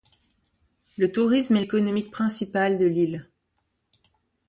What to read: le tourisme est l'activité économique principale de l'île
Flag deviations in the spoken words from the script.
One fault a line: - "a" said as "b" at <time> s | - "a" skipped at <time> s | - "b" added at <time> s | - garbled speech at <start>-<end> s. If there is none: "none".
- "l'activité" skipped at 1.6 s